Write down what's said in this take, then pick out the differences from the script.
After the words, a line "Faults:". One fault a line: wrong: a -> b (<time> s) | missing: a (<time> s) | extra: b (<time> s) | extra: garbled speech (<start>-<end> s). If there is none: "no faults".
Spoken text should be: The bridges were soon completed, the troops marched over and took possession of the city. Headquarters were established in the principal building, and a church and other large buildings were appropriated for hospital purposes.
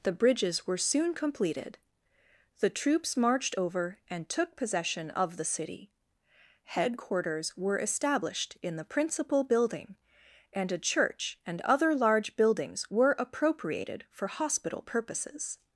The bridges were soon completed, the troops marched over and took possession of the city. Headquarters were established in the principal building, and a church and other large buildings were appropriated for hospital purposes.
Faults:
no faults